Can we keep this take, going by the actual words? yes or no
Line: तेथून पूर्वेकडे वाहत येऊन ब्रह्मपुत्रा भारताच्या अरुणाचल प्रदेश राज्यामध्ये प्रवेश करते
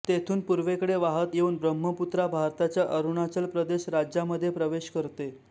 yes